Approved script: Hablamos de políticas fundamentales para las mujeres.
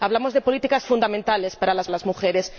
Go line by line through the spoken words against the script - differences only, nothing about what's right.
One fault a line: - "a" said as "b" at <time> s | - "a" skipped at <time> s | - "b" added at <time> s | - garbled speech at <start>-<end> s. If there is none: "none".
- "las" added at 1.9 s